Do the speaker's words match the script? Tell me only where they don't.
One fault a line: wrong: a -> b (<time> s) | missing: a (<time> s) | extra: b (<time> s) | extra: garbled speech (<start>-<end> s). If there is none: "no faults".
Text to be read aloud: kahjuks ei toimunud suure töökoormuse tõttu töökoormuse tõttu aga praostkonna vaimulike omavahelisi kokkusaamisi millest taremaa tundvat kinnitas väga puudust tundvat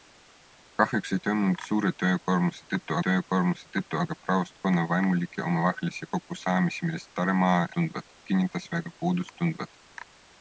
no faults